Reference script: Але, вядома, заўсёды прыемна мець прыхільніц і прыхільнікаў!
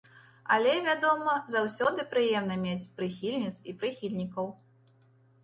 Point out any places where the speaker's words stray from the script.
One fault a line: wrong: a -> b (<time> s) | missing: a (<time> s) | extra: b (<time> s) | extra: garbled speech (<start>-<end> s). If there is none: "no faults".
no faults